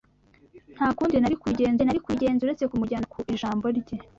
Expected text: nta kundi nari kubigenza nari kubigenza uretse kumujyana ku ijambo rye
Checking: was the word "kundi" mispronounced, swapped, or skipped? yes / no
no